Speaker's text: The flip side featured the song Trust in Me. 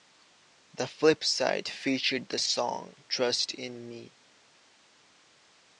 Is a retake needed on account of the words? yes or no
no